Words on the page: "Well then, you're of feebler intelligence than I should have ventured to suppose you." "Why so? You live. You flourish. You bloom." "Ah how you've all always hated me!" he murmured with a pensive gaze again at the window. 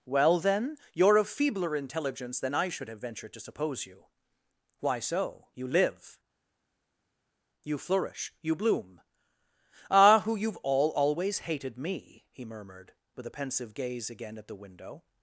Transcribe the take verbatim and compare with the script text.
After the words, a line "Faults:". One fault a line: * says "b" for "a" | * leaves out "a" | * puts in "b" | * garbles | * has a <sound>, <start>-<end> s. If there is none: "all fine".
"Well then, you're of feebler intelligence than I should have ventured to suppose you." "Why so? You live. You flourish. You bloom." "Ah who you've all always hated me!" he murmured with a pensive gaze again at the window.
Faults:
* says "who" for "how"